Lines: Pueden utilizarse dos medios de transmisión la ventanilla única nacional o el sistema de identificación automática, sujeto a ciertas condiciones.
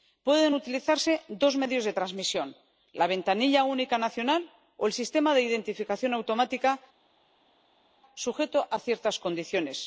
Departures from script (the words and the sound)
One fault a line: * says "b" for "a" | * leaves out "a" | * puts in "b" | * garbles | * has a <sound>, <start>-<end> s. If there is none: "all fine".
all fine